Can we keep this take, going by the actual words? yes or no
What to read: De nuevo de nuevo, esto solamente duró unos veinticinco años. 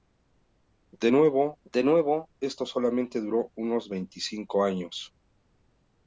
yes